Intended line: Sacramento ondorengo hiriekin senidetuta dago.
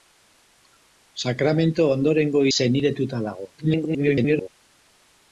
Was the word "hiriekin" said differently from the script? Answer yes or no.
yes